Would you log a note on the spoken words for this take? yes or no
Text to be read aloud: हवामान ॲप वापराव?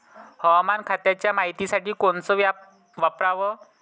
yes